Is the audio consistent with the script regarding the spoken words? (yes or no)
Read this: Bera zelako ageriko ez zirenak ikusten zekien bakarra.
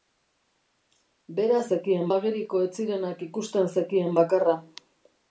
no